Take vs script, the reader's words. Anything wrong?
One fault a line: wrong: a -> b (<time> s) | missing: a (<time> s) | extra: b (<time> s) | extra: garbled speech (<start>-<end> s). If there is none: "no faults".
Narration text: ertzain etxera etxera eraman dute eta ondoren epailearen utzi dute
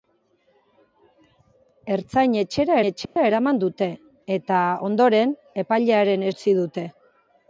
no faults